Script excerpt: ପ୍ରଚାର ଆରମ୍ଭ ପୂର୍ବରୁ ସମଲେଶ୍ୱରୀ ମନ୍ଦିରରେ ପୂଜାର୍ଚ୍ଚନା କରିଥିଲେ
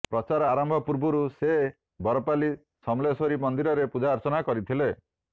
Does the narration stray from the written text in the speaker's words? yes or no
yes